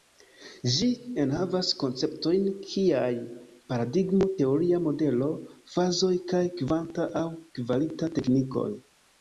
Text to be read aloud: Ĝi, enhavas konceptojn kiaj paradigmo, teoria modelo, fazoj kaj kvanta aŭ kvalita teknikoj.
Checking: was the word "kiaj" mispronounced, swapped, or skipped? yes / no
no